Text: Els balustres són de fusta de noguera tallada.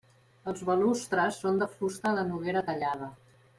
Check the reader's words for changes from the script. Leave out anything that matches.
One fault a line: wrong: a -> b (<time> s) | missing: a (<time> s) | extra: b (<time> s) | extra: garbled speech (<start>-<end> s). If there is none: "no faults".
no faults